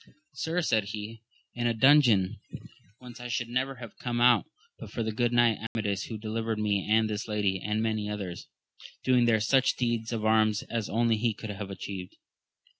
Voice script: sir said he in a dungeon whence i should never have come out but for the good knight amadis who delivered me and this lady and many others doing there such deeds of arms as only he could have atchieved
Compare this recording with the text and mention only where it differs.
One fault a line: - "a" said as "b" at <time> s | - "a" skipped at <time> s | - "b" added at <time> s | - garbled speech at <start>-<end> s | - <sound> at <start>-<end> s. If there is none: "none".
- dropout at 5.7-5.8 s